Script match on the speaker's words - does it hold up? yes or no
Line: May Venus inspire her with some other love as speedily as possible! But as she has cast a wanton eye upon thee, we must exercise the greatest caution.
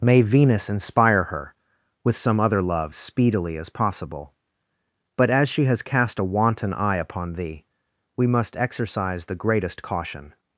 no